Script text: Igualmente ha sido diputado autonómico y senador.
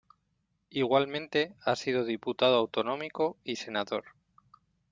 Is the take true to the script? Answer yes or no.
yes